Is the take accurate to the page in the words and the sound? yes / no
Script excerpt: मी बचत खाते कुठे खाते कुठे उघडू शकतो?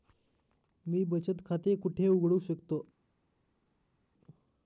no